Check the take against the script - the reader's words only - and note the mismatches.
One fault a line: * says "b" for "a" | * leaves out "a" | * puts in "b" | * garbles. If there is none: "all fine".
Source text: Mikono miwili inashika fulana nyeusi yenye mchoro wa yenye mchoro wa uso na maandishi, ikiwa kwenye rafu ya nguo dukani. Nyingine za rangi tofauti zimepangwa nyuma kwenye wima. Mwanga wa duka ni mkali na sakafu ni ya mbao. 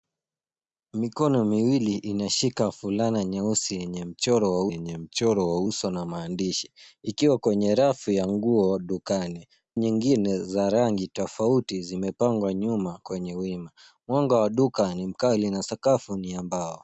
all fine